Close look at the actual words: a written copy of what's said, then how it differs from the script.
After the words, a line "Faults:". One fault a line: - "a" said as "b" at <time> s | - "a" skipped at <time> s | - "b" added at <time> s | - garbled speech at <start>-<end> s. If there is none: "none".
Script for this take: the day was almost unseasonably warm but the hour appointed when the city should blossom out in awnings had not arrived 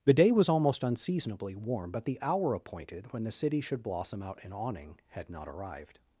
the day was almost unseasonably warm but the hour appointed when the city should blossom out in awning had not arrived
Faults:
- "awnings" said as "awning" at 4.5 s